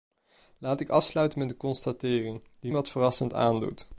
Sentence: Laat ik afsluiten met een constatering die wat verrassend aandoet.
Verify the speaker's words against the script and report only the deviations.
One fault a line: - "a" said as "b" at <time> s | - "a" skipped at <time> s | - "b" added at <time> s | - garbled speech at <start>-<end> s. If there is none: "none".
none